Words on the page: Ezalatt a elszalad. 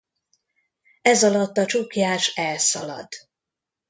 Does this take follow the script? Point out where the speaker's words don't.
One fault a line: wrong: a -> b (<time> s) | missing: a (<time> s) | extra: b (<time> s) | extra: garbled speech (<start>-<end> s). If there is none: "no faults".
extra: csuklyás (1.6 s)